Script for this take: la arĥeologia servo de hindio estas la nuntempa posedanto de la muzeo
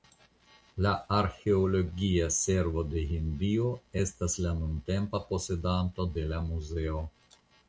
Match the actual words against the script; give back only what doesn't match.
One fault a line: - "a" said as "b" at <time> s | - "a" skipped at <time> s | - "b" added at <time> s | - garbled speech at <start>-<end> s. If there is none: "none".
none